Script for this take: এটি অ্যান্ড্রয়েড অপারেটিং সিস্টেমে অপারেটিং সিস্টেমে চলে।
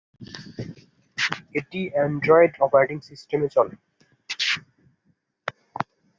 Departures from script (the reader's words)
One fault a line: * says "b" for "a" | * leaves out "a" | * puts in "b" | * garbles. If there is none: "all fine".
* leaves out "অপারেটিং সিস্টেমে"